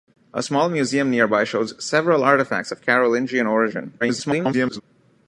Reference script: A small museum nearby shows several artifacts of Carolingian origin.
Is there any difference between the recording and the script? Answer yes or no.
yes